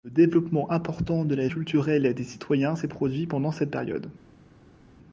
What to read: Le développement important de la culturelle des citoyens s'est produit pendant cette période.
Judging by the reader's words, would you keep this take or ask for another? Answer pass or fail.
pass